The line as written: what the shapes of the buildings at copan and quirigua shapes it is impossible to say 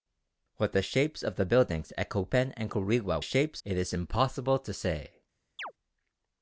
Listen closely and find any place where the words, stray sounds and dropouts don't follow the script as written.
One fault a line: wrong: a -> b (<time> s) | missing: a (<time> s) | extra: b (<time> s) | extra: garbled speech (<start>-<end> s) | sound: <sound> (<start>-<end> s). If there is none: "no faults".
sound: chirp (5.6-5.7 s)